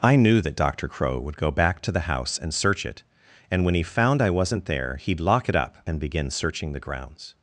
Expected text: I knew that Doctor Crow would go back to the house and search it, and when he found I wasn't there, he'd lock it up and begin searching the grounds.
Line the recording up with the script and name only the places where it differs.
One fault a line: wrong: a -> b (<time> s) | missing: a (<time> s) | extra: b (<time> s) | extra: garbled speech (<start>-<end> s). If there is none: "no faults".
no faults